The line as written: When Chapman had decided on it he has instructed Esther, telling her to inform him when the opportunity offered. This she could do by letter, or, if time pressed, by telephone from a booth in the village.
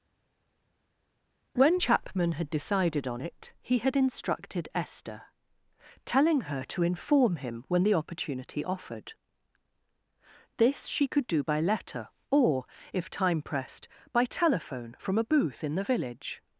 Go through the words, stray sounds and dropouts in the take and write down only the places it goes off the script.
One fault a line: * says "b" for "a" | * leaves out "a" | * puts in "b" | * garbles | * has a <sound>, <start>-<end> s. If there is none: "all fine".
* says "had" for "has"